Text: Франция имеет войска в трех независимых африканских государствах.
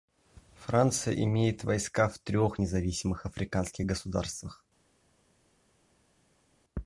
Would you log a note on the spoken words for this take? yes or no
no